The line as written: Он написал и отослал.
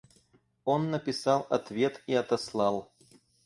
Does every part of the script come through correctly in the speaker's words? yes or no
no